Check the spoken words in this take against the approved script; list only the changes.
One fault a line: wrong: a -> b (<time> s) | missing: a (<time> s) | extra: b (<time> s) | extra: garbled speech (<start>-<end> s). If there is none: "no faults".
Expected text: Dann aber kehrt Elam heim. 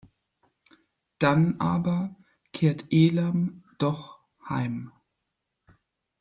extra: doch (3.8 s)